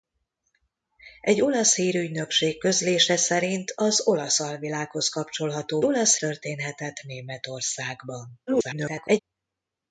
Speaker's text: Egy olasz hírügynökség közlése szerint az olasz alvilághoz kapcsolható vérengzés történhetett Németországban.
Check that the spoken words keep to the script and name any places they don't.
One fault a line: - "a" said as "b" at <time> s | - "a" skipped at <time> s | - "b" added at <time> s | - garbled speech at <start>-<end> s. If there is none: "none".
- "vérengzés" said as "olasz" at 5.8 s
- garbled speech at 8.5-9.2 s